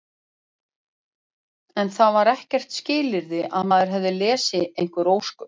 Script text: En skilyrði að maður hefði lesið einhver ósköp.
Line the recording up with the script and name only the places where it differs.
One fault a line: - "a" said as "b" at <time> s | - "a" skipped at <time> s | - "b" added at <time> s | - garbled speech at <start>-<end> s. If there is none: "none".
- "það var ekkert" added at 2.0 s